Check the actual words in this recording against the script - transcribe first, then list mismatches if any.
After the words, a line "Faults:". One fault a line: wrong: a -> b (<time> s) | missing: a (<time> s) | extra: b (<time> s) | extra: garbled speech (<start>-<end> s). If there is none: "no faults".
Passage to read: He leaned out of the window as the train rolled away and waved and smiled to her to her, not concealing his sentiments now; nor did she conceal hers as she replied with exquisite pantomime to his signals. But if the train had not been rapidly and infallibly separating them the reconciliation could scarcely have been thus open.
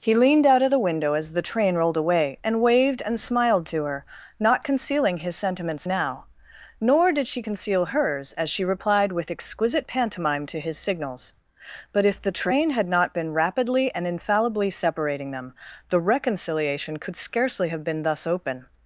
He leaned out of the window as the train rolled away and waved and smiled to her, not concealing his sentiments now; nor did she conceal hers as she replied with exquisite pantomime to his signals. But if the train had not been rapidly and infallibly separating them the reconciliation could scarcely have been thus open.
Faults:
missing: to her (4.0 s)